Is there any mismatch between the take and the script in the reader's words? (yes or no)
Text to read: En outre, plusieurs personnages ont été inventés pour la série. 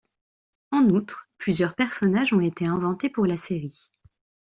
no